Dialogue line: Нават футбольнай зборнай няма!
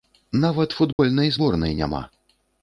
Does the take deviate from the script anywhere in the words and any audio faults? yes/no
yes